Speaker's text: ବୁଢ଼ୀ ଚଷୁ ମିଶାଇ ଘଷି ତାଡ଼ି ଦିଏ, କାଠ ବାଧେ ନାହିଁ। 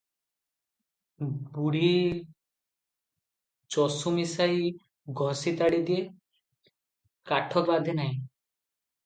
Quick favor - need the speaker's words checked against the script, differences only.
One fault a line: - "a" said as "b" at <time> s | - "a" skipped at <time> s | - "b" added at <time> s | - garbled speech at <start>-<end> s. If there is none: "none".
none